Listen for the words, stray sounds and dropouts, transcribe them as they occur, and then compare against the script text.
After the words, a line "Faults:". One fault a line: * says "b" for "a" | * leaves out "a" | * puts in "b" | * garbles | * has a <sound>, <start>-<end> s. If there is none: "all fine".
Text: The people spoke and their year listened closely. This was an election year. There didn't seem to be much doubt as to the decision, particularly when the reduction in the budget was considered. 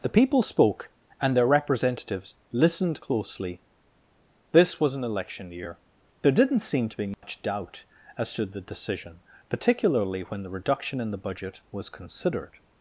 The people spoke and their representatives listened closely. This was an election year. There didn't seem to be much doubt as to the decision, particularly when the reduction in the budget was considered.
Faults:
* says "representatives" for "year"
* has a dropout, 7.1-7.2 s